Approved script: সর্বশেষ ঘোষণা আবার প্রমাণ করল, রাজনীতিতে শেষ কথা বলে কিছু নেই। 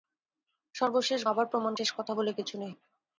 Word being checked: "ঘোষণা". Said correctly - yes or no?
no